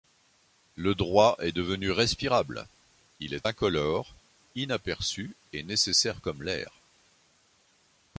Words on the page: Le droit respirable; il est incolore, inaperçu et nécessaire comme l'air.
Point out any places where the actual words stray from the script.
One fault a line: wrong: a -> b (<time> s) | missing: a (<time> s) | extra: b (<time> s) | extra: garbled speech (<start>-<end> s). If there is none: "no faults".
extra: est devenu (1.4 s)